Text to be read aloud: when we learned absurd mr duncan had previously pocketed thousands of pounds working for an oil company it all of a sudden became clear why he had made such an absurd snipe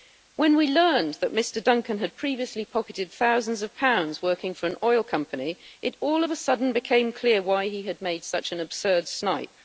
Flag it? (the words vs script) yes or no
yes